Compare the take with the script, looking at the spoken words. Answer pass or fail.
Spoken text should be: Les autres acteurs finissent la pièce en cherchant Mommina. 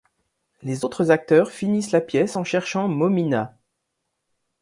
pass